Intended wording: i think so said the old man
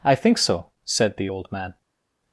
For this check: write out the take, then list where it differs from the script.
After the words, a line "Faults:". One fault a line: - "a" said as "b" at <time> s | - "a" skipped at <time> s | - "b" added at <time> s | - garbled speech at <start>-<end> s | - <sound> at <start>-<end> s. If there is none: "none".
i think so said the old man
Faults:
none